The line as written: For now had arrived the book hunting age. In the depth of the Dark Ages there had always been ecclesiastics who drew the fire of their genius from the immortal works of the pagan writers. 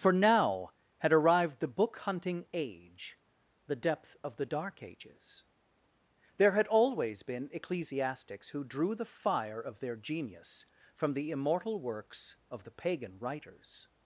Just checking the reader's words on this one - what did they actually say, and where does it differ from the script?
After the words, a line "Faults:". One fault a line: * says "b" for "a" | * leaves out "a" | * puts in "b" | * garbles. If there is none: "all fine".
For now had arrived the book hunting age. the depth of the Dark Ages there had always been ecclesiastics who drew the fire of their genius from the immortal works of the pagan writers.
Faults:
* leaves out "In"